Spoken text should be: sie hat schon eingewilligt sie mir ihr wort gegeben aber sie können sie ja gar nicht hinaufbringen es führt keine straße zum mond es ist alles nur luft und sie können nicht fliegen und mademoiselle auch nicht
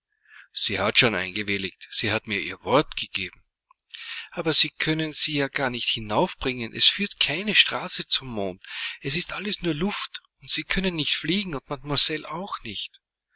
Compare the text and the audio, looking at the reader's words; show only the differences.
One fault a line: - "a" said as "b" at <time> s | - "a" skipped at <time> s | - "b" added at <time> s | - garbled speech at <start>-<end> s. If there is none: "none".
- "hat" added at 2.1 s